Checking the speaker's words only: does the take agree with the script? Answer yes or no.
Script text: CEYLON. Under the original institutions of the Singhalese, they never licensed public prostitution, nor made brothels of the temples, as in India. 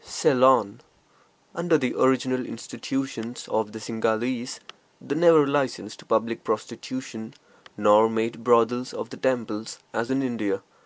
yes